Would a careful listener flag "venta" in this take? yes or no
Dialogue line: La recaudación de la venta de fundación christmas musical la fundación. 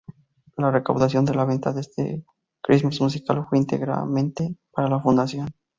no